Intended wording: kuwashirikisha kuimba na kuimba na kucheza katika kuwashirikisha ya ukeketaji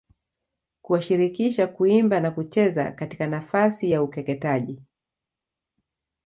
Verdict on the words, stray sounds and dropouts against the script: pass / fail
fail